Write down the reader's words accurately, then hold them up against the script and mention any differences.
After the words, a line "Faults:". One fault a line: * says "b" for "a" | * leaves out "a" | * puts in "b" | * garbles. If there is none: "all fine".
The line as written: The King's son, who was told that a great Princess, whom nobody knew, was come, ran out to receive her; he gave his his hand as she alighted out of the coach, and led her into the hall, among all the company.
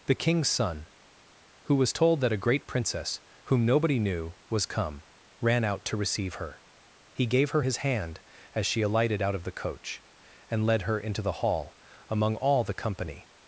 The King's son, who was told that a great Princess, whom nobody knew, was come, ran out to receive her; he gave her his hand as she alighted out of the coach, and led her into the hall, among all the company.
Faults:
* says "her" for "his"